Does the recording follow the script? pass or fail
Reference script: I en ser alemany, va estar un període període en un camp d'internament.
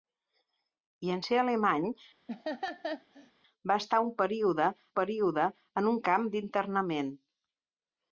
pass